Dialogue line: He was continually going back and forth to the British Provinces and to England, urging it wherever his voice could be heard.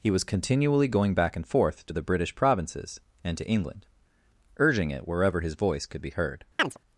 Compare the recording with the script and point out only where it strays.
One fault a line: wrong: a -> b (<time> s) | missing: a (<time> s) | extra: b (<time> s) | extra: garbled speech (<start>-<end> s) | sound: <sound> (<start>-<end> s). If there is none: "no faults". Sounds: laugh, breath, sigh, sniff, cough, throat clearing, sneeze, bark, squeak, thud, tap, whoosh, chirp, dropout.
sound: chirp (6.6-6.8 s)